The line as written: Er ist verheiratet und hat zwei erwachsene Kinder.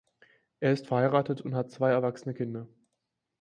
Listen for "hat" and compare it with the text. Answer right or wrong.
right